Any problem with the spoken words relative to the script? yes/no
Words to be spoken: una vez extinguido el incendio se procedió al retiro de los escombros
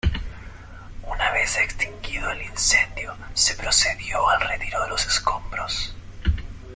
no